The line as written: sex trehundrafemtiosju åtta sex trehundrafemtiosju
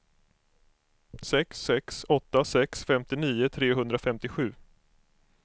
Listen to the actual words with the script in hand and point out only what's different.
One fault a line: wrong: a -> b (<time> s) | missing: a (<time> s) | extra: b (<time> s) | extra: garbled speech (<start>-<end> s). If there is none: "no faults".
wrong: trehundrafemtiosju -> sex (1.6 s)
extra: femtionio (2.8 s)